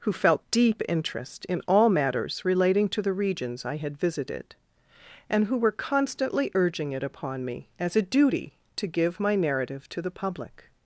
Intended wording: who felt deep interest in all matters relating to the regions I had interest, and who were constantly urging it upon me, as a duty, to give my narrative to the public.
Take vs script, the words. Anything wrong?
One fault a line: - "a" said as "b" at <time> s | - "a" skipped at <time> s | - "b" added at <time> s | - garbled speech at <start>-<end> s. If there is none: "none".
- "interest" said as "visited" at 4.0 s